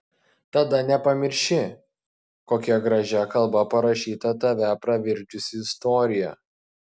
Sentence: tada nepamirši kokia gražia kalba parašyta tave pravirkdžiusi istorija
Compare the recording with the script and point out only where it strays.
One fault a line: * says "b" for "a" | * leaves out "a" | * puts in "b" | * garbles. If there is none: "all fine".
all fine